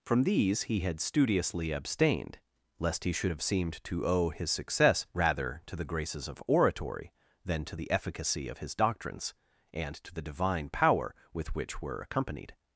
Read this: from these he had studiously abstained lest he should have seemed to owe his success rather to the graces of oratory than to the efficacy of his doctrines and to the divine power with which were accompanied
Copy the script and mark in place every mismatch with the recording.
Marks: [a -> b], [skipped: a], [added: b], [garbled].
from these he had studiously abstained lest he should have seemed to owe his success rather to the graces of oratory than to the efficacy of his doctrines and to the divine power with which were accompanied